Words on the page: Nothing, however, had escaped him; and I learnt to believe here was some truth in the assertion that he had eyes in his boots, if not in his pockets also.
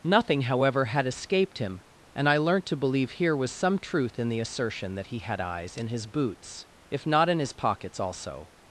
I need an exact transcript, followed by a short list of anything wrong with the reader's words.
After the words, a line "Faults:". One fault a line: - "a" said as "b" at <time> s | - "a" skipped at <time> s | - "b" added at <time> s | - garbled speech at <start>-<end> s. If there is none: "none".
Nothing, however, had escaped him; and I learnt to believe here was some truth in the assertion that he had eyes in his boots, if not in his pockets also.
Faults:
none